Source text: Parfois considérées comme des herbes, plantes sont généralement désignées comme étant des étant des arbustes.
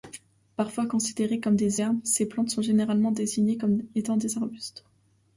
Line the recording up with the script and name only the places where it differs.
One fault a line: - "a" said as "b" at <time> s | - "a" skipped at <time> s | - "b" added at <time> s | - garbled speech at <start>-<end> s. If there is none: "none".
- "ces" added at 2.0 s
- "étant des" skipped at 4.4 s